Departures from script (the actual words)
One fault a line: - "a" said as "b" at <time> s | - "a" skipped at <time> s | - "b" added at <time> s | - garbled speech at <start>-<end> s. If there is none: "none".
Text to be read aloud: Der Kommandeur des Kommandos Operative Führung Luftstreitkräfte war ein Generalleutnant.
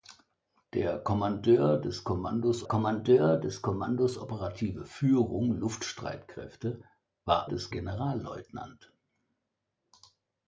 - "Kommandeur des Kommandos" added at 2.6 s
- "ein" said as "des" at 7.4 s